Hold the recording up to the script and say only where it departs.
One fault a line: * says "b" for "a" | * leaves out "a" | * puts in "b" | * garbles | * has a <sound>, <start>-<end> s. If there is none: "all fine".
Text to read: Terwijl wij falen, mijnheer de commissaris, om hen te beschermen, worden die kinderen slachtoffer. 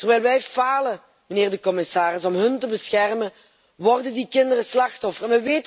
all fine